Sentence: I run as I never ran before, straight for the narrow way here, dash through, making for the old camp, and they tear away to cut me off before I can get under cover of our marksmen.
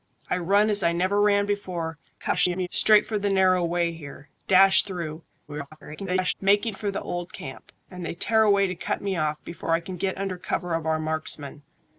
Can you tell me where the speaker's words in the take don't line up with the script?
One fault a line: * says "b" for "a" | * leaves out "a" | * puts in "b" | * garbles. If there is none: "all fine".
* garbles
* garbles